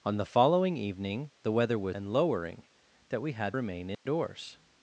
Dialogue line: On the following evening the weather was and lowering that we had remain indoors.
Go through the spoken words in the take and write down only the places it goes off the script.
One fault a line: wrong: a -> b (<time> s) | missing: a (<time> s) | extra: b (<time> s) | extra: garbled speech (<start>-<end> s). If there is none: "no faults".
no faults